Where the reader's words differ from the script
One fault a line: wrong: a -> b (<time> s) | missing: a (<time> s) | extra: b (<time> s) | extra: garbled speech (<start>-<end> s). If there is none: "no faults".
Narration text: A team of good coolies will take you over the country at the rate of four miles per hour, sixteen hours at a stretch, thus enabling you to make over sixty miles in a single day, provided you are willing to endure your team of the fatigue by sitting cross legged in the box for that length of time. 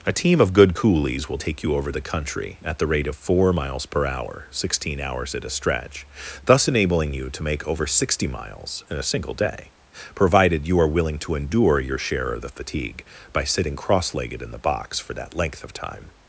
wrong: team -> share (12.0 s)